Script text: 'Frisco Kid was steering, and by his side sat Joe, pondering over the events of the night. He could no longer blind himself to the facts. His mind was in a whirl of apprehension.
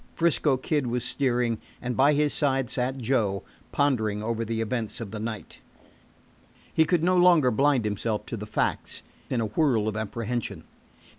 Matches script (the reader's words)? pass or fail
fail